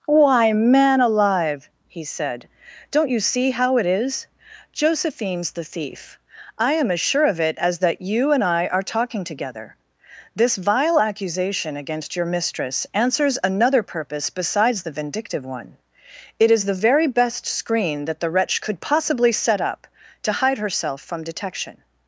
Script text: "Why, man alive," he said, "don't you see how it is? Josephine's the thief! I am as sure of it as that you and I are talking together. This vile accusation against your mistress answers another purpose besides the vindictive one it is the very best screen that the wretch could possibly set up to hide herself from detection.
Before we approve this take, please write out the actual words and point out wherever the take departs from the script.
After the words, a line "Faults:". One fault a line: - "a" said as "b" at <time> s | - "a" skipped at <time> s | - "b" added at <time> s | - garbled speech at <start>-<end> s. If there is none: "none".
"Why, man alive," he said, "don't you see how it is? Josephine's the thief! I am as sure of it as that you and I are talking together. This vile accusation against your mistress answers another purpose besides the vindictive one it is the very best screen that the wretch could possibly set up to hide herself from detection.
Faults:
none